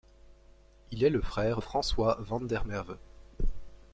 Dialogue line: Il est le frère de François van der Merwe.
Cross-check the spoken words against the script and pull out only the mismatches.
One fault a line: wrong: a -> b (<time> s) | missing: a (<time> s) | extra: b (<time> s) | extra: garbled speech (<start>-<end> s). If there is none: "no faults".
missing: de (1.6 s)